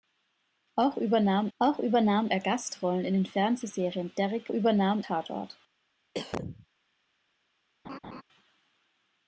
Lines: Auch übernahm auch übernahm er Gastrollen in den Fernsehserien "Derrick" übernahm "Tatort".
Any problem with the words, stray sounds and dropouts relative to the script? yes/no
yes